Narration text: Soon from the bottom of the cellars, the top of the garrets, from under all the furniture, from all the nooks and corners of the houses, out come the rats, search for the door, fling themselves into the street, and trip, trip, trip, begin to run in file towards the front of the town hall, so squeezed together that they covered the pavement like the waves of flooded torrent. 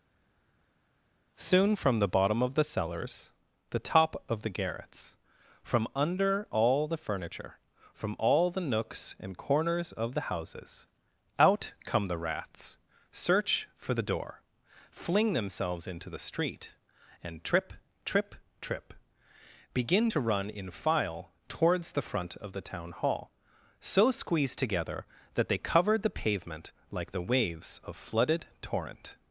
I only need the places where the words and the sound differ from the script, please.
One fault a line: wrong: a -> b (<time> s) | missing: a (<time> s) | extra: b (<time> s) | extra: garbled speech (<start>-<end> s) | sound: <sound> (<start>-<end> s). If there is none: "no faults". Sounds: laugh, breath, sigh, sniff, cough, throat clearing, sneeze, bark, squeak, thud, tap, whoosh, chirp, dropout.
no faults